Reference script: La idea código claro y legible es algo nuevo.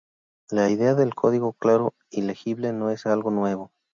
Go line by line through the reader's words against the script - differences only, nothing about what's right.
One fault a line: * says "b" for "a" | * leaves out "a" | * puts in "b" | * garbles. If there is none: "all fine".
* puts in "del"
* puts in "no"